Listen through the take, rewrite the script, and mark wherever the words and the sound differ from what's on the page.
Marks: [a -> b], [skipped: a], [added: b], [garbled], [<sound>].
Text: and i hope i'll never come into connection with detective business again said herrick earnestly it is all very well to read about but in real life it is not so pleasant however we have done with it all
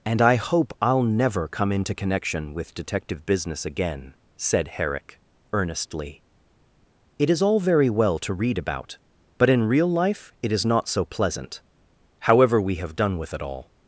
and i hope i'll never come into connection with detective business again said herrick earnestly it is all very well to read about but in real life it is not so pleasant however we have done with it all